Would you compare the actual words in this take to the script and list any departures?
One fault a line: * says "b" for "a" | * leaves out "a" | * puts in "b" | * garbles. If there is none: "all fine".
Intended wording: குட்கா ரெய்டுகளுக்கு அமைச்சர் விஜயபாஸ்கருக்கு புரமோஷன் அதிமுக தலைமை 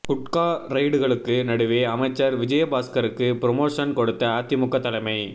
* puts in "நடுவே"
* puts in "கொடுத்த"